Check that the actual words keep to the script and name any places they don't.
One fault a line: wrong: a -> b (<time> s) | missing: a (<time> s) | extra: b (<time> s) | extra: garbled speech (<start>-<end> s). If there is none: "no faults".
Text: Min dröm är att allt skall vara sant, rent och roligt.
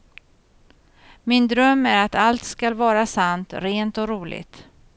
no faults